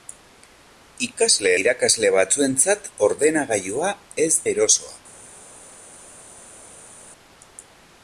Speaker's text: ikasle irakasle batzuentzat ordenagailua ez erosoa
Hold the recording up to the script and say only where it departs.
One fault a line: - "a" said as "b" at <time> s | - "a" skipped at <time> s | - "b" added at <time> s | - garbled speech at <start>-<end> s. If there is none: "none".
none